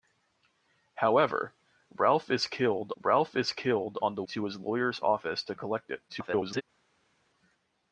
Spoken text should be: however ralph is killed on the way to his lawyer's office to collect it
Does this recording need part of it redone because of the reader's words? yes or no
yes